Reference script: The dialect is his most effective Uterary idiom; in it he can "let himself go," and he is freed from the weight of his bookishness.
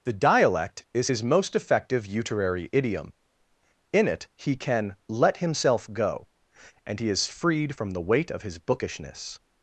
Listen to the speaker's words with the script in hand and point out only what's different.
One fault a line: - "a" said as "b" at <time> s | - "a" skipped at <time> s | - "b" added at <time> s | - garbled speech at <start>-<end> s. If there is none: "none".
none